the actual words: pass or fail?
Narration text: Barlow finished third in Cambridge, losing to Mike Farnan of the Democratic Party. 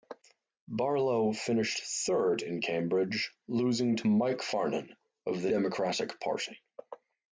pass